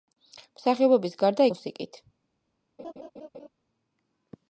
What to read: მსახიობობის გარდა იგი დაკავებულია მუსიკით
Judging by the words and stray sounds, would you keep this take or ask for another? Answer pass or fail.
fail